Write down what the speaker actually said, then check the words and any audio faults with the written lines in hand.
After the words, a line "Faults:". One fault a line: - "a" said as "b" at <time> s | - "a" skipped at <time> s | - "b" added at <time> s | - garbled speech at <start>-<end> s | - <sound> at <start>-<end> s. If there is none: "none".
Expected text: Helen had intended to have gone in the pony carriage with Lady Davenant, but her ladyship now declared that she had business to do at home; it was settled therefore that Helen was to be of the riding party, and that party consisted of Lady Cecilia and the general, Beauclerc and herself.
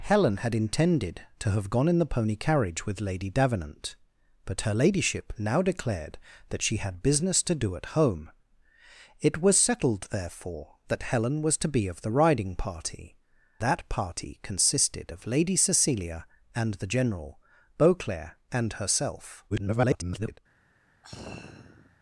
Helen had intended to have gone in the pony carriage with Lady Davenant, but her ladyship now declared that she had business to do at home; it was settled therefore that Helen was to be of the riding party, that party consisted of Lady Cecilia and the general, Beauclerc and herself. [garbled]
Faults:
- "and" skipped at 13.2 s
- garbled speech at 19.5-20.4 s
- sigh at 21.0-22.0 s